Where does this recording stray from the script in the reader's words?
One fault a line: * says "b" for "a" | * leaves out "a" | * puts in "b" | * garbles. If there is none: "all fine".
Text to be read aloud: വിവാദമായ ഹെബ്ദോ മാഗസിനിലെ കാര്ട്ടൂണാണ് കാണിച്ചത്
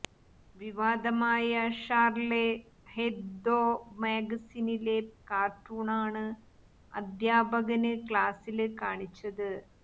* puts in "ഷാര്ലേ"
* puts in "അധ്യാപകന് ക്ലാസില്"